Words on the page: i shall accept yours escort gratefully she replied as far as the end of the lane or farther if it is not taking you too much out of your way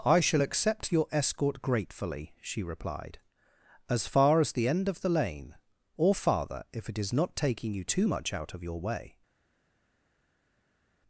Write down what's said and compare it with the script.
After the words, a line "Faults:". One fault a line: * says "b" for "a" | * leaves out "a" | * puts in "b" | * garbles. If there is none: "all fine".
i shall accept your escort gratefully she replied as far as the end of the lane or farther if it is not taking you too much out of your way
Faults:
* says "your" for "yours"